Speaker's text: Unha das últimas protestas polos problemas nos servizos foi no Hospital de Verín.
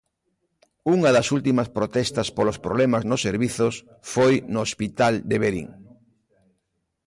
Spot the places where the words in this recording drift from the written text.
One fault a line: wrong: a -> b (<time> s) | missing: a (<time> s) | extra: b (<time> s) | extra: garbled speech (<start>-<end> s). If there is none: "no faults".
no faults